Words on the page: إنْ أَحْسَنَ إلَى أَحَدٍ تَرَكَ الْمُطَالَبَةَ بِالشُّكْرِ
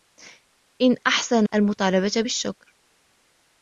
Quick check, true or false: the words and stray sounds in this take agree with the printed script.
false